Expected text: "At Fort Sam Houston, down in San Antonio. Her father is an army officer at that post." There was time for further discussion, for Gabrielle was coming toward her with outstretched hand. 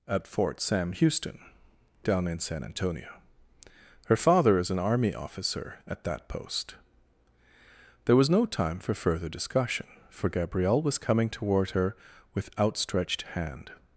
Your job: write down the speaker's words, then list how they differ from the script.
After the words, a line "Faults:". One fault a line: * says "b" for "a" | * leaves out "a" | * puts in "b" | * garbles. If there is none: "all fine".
"At Fort Sam Houston, down in San Antonio. Her father is an army officer at that post." There was no time for further discussion, for Gabrielle was coming toward her with outstretched hand.
Faults:
* puts in "no"